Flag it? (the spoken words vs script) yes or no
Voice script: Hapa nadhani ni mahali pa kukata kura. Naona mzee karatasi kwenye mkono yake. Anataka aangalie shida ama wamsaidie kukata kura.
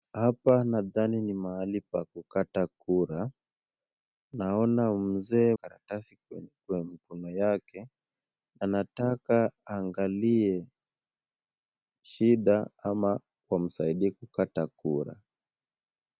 no